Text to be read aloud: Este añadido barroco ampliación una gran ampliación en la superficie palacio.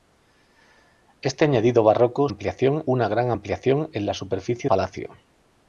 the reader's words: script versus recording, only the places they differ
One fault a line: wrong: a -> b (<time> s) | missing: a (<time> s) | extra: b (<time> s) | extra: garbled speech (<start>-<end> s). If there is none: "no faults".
no faults